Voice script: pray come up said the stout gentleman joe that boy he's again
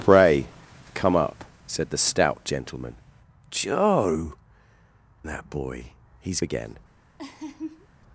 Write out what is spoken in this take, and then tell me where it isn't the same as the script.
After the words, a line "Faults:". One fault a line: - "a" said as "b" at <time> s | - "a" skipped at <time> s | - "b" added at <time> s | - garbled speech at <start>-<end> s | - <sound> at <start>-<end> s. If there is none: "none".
pray come up said the stout gentleman joe that boy he's again
Faults:
- laugh at 7.2-7.9 s